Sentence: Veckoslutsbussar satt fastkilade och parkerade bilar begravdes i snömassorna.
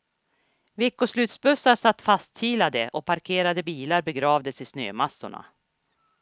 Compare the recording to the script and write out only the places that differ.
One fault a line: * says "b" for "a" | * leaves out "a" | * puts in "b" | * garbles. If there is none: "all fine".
all fine